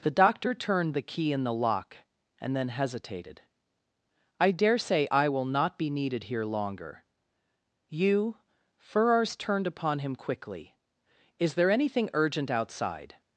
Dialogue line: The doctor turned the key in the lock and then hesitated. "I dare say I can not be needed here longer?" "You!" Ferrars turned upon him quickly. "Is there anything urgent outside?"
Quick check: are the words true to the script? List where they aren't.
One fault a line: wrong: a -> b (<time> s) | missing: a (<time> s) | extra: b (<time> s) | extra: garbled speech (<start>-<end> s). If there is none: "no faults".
wrong: can -> will (5.3 s)